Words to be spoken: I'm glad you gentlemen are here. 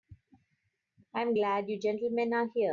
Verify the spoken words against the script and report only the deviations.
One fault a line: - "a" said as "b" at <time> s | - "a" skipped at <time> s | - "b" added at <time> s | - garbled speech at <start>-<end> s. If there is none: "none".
none